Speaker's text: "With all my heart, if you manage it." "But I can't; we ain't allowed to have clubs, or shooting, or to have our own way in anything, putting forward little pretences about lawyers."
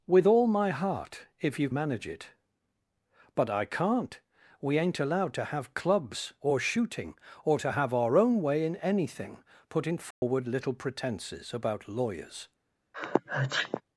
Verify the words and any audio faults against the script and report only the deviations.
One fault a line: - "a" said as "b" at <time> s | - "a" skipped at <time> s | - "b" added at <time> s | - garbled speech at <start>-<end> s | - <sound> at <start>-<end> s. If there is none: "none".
- dropout at 10.1-10.2 s
- sneeze at 12.9-13.8 s